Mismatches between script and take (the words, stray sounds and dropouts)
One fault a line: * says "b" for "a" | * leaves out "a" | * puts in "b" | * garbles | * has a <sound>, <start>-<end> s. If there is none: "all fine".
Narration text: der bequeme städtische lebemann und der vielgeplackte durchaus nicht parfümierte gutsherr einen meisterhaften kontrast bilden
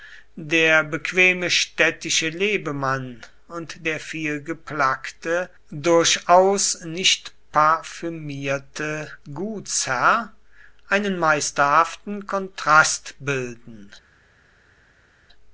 all fine